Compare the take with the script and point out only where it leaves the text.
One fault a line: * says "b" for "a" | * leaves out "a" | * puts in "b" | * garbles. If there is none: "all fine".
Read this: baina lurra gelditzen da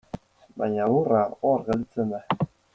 * puts in "hor"